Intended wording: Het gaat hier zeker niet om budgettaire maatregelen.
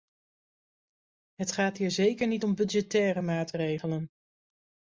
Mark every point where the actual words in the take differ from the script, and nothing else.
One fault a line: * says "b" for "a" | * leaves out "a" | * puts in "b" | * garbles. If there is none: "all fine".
all fine